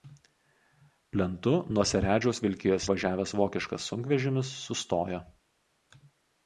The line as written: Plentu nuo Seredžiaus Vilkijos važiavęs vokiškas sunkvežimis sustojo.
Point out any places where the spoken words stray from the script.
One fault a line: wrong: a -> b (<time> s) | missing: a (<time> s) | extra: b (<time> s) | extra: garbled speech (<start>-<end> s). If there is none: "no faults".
no faults